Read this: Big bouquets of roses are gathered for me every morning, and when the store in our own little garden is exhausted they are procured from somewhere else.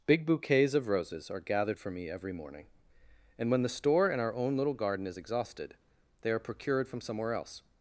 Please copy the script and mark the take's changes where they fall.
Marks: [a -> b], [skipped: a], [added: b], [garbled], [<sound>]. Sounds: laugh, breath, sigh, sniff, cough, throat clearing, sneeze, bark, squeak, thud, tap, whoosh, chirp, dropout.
Big bouquets of roses are gathered for me every morning, and when the store in our own little garden is exhausted they are procured from somewhere else.